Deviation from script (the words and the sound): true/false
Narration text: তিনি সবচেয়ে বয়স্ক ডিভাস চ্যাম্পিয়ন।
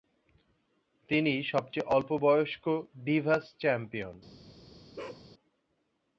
true